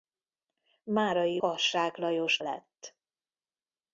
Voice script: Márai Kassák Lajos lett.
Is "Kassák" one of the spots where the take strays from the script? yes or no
no